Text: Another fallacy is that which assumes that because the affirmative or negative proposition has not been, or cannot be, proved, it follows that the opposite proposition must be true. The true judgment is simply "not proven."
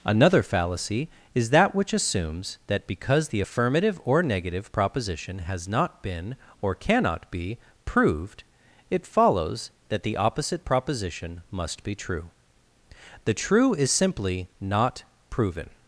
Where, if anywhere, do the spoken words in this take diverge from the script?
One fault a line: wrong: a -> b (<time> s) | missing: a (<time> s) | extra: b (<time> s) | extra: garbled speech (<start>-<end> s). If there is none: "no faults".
missing: judgment (13.7 s)